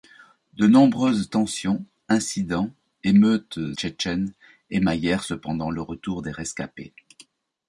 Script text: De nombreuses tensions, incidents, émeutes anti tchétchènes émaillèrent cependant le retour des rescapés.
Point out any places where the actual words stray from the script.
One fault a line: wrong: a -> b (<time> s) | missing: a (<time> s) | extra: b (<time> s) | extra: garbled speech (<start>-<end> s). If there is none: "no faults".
missing: anti (3.6 s)